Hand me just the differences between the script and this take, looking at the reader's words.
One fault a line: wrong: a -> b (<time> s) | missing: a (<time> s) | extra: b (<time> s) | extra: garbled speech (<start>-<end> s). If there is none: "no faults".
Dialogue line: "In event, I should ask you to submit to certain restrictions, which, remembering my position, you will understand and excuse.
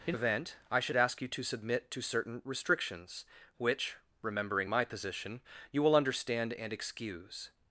no faults